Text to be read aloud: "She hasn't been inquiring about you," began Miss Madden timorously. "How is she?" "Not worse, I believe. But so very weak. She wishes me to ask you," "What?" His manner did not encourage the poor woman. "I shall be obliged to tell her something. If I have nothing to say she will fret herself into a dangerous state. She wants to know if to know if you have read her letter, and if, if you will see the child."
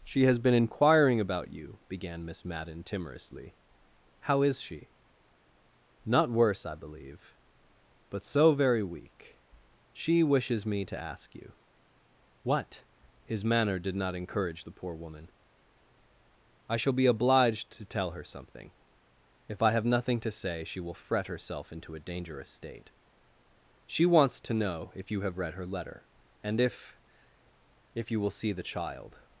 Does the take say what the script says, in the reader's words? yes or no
no